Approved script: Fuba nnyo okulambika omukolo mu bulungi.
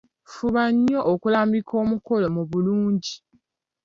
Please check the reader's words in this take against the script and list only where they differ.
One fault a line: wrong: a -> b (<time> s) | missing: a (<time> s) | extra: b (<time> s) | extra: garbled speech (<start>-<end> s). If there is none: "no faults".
no faults